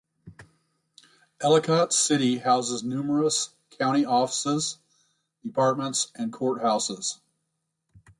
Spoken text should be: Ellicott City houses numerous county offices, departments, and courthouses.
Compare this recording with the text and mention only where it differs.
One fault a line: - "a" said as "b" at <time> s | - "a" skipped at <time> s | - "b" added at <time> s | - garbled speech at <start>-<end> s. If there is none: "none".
none